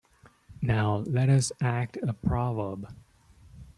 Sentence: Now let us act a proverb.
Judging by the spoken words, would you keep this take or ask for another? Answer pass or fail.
pass